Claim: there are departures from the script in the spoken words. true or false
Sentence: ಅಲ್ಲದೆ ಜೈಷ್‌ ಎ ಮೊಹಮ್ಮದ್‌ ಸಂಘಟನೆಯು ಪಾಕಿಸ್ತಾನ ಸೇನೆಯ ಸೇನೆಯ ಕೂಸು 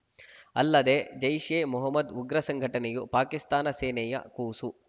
true